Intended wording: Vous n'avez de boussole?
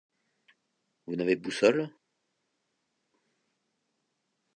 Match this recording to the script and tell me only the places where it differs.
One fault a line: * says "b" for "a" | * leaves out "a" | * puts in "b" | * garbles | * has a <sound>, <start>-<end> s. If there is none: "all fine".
all fine